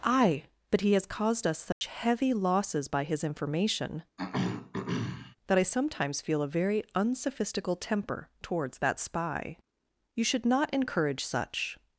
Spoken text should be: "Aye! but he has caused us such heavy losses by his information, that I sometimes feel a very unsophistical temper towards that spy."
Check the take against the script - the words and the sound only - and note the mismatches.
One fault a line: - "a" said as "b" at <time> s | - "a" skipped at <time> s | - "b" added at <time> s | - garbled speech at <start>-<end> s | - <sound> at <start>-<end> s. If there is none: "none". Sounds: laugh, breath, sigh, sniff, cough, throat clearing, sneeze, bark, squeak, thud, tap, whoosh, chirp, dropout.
- dropout at 1.7-1.8 s
- throat clearing at 4.2-5.4 s
- "You should not encourage such" added at 10.2 s